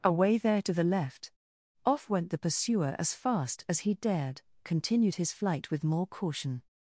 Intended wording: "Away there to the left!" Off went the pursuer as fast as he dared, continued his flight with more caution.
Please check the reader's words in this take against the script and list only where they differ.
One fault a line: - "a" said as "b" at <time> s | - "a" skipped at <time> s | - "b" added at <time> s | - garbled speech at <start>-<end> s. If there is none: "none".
none